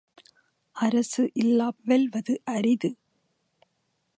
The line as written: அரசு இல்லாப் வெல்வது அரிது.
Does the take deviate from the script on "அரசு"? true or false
false